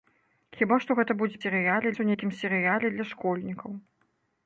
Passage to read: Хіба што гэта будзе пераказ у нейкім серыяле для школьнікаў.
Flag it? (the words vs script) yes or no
yes